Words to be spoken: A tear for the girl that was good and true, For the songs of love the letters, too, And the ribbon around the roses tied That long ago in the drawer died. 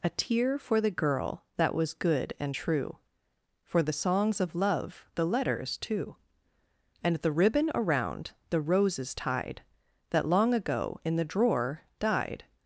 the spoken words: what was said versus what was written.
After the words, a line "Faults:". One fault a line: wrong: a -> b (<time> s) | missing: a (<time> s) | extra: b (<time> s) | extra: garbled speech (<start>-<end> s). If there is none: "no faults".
A tear for the girl that was good and true, For the songs of love the letters, too, And the ribbon around the roses tied That long ago in the drawer died.
Faults:
no faults